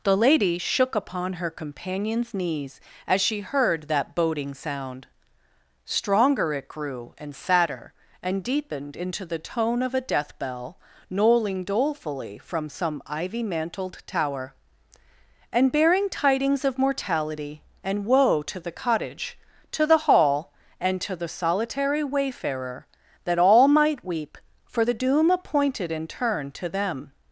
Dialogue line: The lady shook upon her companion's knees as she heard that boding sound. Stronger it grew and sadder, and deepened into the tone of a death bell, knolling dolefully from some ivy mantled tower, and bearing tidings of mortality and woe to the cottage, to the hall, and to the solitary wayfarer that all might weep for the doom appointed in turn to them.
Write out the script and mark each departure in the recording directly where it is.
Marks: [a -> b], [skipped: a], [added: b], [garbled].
The lady shook upon her companion's knees as she heard that boding sound. Stronger it grew and sadder, and deepened into the tone of a death bell, knolling dolefully from some ivy mantled tower, and bearing tidings of mortality and woe to the cottage, to the hall, and to the solitary wayfarer that all might weep for the doom appointed in turn to them.